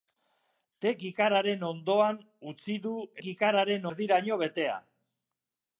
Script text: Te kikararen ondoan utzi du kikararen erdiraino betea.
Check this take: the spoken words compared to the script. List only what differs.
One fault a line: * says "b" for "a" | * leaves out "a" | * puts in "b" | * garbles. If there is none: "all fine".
all fine